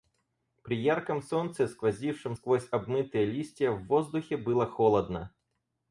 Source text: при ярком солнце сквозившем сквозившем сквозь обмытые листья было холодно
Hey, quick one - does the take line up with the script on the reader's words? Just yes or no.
no